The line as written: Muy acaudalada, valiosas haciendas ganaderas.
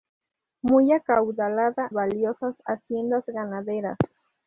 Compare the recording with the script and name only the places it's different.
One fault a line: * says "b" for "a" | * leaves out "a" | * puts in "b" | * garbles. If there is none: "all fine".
all fine